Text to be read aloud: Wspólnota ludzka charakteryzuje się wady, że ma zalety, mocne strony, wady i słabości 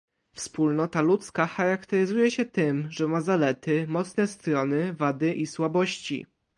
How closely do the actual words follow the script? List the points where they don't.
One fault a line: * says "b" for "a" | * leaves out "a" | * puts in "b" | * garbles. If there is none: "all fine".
* says "tym" for "wady"